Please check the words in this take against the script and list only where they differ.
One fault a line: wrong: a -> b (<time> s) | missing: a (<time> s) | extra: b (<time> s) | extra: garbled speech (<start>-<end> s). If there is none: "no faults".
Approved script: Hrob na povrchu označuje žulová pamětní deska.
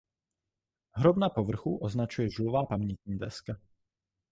no faults